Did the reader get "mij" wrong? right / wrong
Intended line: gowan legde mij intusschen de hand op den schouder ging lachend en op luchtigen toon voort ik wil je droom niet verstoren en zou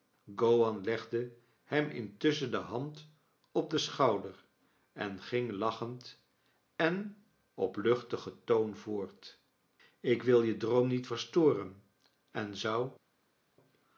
wrong